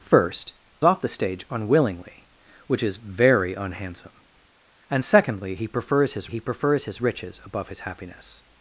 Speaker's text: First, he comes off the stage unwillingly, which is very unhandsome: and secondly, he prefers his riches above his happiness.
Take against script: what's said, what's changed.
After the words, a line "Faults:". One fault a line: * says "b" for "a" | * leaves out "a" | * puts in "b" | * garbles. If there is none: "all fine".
First, off the stage unwillingly, which is very unhandsome: and secondly, he prefers his he prefers his riches above his happiness.
Faults:
* leaves out "he comes"
* puts in "he prefers his"